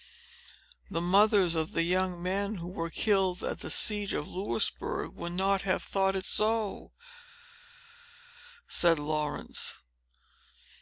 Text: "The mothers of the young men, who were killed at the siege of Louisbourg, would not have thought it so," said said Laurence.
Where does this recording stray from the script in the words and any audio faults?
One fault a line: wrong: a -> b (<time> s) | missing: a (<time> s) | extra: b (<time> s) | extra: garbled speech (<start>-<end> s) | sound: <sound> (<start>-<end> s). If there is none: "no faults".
missing: said (9.0 s)